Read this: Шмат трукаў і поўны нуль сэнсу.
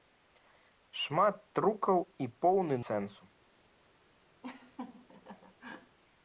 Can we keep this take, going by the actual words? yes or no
no